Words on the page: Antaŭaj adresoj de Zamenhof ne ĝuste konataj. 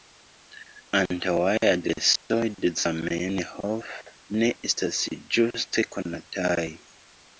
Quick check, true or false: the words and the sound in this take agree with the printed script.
false